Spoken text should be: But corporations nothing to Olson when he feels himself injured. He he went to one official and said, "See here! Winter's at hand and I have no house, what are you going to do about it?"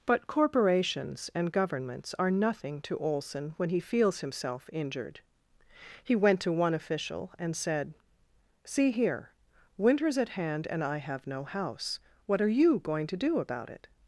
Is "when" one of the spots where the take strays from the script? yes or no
no